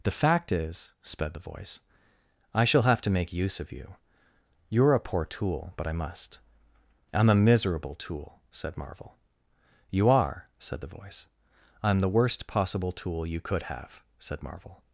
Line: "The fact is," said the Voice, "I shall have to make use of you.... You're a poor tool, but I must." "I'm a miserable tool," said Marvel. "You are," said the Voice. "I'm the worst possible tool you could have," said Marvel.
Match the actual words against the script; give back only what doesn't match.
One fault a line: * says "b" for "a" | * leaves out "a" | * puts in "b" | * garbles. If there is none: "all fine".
* says "sped" for "said"